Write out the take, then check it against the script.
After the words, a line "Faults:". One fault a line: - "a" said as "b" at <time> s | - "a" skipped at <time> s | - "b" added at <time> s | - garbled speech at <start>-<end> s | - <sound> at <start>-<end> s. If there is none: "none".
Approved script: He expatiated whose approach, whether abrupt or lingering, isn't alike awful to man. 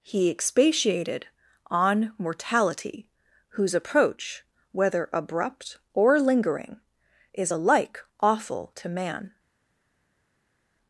He expatiated on mortality, whose approach, whether abrupt or lingering, is alike awful to man.
Faults:
- "on mortality" added at 1.7 s
- "isn't" said as "is" at 7.3 s